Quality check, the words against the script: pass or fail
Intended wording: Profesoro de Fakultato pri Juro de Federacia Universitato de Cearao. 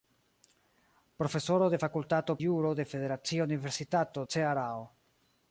fail